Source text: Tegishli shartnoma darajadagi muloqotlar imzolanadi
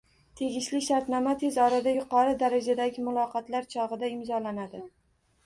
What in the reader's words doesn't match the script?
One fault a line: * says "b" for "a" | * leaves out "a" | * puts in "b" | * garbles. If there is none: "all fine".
* puts in "tez orada yuqori"
* puts in "chog‘ida"